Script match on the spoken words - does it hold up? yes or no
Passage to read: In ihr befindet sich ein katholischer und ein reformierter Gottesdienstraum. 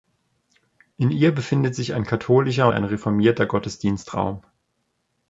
no